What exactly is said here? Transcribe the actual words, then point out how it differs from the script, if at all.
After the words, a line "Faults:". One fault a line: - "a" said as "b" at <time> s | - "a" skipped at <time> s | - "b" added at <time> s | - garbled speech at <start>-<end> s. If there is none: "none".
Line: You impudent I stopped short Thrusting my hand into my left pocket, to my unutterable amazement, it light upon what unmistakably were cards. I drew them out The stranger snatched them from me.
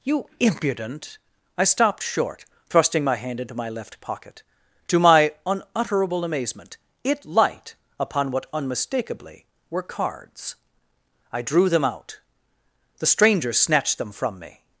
You impudent I stopped short Thrusting my hand into my left pocket, to my unutterable amazement, it light upon what unmistakably were cards. I drew them out The stranger snatched them from me.
Faults:
none